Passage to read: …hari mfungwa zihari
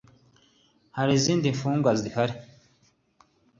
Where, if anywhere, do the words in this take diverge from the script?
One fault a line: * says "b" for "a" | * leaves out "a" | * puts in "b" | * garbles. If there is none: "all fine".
* puts in "izindi"